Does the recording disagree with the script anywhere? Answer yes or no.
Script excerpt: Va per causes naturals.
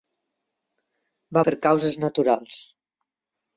no